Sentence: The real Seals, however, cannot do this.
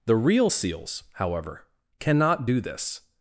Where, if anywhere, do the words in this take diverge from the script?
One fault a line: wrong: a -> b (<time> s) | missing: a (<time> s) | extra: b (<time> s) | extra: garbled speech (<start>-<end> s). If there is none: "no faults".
no faults